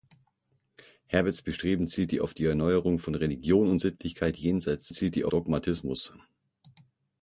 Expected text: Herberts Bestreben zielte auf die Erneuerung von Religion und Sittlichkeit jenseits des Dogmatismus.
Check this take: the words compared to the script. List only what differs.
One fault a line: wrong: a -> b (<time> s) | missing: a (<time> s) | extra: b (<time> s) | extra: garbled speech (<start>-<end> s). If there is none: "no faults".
wrong: des -> zielte (4.9 s)